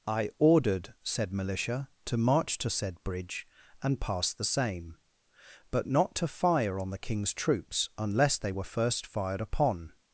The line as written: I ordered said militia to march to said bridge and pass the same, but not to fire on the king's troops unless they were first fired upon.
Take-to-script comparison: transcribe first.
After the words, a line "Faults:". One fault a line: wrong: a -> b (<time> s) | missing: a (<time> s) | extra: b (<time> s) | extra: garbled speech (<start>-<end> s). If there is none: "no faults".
I ordered said militia to march to said bridge and pass the same, but not to fire on the king's troops unless they were first fired upon.
Faults:
no faults